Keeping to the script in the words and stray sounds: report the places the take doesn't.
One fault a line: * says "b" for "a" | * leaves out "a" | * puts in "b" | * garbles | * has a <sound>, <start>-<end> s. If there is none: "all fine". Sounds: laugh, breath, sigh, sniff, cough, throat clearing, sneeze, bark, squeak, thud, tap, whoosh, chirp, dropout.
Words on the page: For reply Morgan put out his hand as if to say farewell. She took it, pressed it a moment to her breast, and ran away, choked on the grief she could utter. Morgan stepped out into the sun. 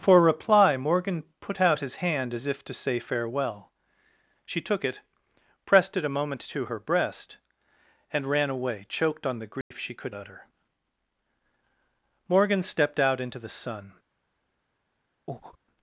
* has a dropout, 9.6-9.7 s
* has a breath, 15.3-15.6 s